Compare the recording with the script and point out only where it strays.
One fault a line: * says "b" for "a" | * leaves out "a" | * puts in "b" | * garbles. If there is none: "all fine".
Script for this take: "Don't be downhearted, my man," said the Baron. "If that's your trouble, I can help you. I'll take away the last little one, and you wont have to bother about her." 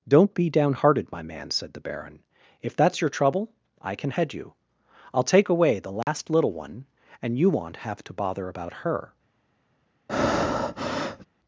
* says "head" for "help"